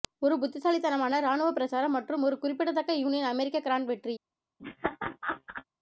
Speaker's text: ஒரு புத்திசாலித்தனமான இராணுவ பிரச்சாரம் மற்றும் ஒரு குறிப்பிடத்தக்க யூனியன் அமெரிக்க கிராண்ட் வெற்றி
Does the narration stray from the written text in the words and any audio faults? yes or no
yes